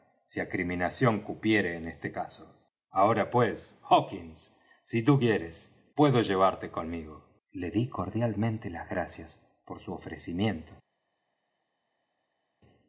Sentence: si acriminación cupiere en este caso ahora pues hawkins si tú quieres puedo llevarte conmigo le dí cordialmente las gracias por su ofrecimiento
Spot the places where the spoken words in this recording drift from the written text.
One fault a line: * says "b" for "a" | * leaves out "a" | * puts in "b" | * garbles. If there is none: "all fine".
all fine